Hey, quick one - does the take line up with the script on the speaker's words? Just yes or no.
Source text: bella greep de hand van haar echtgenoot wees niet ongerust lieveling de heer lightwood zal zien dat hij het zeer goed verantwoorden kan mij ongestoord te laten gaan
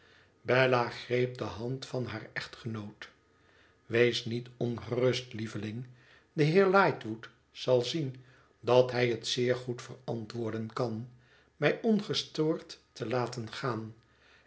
yes